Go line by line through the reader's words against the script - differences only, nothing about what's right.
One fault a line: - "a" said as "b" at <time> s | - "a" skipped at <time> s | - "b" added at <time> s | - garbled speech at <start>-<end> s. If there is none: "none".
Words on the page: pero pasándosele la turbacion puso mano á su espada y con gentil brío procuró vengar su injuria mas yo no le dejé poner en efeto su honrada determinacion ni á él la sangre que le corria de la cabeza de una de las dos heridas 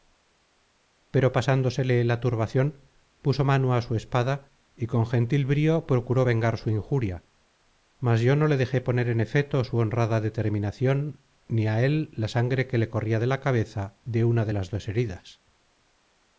none